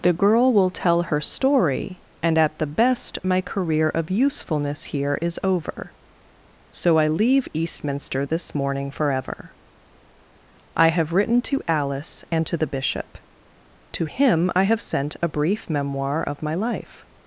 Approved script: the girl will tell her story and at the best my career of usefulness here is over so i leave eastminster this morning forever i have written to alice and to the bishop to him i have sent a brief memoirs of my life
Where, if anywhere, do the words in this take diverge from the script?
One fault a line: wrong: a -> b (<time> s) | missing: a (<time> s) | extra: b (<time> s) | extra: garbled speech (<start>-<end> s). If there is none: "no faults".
wrong: memoirs -> memoir (15.7 s)